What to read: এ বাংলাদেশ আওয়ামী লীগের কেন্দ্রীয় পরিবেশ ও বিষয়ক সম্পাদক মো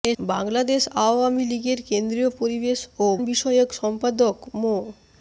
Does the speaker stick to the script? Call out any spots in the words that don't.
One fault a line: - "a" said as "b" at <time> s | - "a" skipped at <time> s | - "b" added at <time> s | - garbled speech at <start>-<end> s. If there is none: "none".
none